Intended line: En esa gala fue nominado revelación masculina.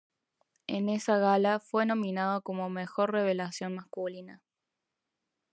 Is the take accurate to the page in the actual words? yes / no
no